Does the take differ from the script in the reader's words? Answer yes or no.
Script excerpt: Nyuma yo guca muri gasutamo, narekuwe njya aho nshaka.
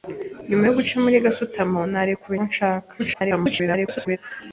yes